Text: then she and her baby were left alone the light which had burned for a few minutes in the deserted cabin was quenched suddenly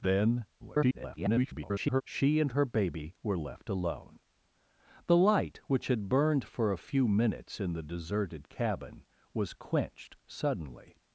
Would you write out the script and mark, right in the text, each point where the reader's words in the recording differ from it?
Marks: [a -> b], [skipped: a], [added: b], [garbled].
then [garbled] she and her baby were left alone the light which had burned for a few minutes in the deserted cabin was quenched suddenly